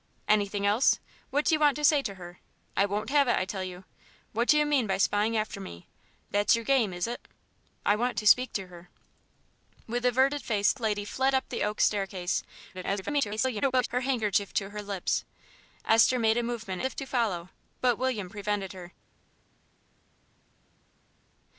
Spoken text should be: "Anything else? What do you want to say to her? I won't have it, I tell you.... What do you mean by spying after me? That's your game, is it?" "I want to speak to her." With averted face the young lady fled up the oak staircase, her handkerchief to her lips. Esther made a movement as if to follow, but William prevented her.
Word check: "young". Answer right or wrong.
wrong